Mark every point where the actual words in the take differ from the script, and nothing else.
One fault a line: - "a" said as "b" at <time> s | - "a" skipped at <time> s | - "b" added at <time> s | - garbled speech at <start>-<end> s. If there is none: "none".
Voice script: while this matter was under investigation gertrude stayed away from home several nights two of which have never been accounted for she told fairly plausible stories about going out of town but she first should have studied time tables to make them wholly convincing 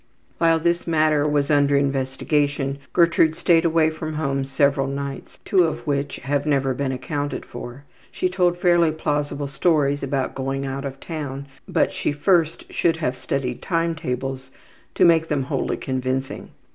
none